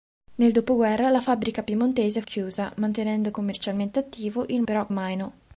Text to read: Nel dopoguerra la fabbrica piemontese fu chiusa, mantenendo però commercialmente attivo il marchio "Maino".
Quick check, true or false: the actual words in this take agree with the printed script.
false